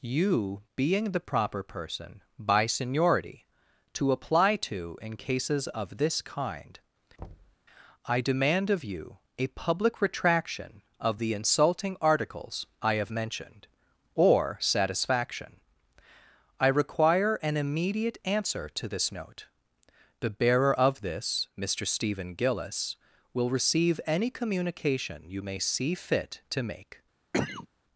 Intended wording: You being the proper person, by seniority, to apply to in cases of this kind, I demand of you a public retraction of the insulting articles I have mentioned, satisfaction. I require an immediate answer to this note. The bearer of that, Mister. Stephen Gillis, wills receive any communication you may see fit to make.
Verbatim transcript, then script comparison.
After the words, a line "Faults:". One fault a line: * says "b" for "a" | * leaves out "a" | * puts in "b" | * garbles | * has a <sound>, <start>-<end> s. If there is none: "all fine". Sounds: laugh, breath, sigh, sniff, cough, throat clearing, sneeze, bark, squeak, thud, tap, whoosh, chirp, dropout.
You being the proper person, by seniority, to apply to in cases of this kind, I demand of you a public retraction of the insulting articles I have mentioned, or satisfaction. I require an immediate answer to this note. The bearer of this, Mister. Stephen Gillis, will receive any communication you may see fit to make.
Faults:
* has a thud, 7.2-7.6 s
* puts in "or"
* says "this" for "that"
* says "will" for "wills"
* has a cough, 27.3-27.7 s